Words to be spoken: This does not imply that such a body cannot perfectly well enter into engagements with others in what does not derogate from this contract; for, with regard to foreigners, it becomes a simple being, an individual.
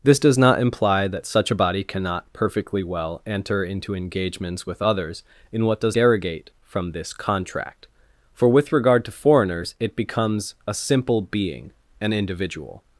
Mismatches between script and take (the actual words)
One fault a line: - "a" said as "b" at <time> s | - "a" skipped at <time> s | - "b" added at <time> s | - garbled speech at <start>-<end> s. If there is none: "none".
- "not" skipped at 6.0 s